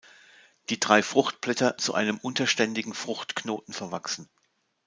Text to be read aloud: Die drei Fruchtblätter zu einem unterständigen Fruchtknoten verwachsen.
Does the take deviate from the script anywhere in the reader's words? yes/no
no